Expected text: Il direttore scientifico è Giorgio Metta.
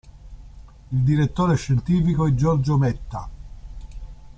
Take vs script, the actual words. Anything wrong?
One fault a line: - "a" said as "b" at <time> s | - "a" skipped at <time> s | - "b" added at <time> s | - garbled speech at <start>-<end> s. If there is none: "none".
none